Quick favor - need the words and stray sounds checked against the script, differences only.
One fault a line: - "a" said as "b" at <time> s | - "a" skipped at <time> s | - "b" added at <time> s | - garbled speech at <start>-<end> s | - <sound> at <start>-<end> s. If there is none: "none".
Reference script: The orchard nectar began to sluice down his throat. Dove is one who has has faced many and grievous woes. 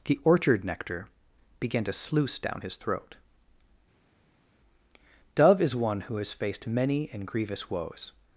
- "has" skipped at 6.3 s